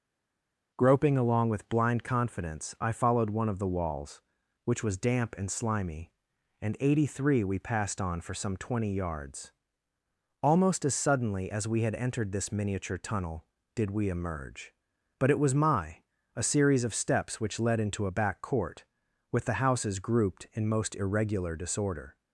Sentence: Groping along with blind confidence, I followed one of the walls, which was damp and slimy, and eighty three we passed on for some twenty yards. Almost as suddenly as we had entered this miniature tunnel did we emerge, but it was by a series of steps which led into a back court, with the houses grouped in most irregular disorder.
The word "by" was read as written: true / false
false